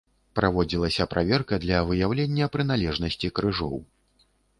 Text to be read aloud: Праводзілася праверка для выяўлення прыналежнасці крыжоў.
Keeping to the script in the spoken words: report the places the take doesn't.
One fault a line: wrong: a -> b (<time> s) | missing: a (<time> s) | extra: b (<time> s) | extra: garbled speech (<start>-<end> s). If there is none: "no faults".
no faults